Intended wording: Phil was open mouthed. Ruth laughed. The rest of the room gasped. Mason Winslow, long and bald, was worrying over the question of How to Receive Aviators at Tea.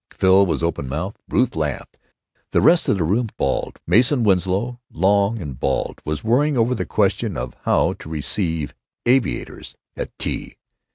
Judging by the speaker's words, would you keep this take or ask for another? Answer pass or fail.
fail